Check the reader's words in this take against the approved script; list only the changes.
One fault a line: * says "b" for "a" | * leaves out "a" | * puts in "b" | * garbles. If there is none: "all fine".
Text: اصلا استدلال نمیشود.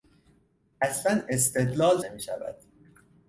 all fine